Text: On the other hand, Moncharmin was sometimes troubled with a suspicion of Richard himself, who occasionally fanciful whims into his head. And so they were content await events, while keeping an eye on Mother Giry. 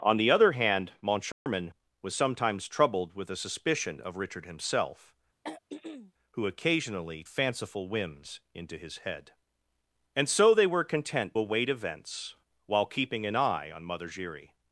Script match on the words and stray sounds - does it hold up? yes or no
no